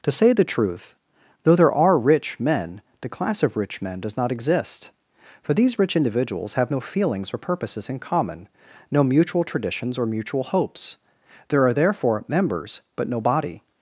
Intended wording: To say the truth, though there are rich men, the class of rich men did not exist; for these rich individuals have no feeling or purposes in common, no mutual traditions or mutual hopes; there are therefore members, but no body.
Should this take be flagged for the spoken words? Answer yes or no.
yes